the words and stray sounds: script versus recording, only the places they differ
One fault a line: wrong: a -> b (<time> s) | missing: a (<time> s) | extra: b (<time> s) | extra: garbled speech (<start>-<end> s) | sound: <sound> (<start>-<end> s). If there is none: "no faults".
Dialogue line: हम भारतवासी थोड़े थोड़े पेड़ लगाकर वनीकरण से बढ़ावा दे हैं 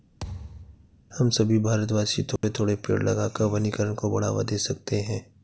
sound: thud (0.2-1.0 s)
extra: सभी (1.3 s)
sound: dropout (2.4-2.4 s)
wrong: से -> को (3.9 s)
extra: सकते (4.6 s)